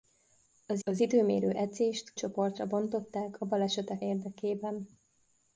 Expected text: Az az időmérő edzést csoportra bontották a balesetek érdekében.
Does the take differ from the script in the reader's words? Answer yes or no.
no